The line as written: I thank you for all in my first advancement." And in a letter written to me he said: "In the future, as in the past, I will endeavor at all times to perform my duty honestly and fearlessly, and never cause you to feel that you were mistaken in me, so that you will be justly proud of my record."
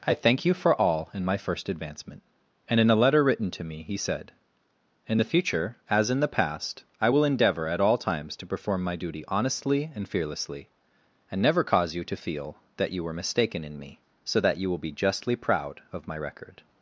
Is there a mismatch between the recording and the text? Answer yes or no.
no